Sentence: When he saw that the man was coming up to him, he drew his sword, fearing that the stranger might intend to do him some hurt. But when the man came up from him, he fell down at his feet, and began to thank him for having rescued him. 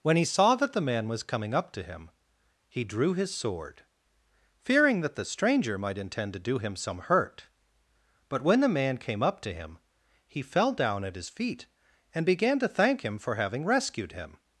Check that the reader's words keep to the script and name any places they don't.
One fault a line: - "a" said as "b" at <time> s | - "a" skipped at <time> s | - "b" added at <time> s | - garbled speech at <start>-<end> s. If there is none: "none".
- "from" said as "to" at 9.4 s